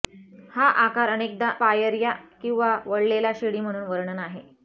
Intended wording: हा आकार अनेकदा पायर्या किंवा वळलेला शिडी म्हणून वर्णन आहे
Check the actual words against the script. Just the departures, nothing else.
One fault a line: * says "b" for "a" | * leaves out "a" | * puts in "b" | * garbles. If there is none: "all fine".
all fine